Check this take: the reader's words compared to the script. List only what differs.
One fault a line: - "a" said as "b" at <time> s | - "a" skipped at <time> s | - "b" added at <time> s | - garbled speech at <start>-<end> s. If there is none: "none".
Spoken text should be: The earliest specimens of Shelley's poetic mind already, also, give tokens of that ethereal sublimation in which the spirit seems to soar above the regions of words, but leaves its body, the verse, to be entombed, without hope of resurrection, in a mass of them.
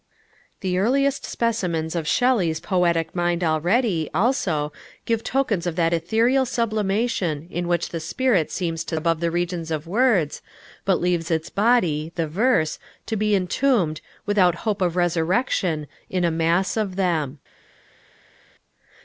- "soar" skipped at 9.0 s